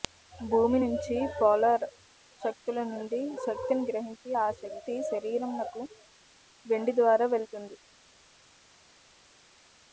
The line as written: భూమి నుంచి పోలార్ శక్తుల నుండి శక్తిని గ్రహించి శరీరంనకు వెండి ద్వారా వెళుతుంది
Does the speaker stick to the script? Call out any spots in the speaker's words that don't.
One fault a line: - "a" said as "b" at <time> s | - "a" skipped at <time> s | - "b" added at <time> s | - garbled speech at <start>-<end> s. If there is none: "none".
- "ఆ శక్తి" added at 4.4 s